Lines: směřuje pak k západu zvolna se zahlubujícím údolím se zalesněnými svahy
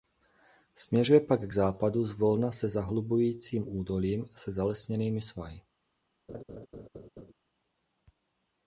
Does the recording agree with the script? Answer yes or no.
yes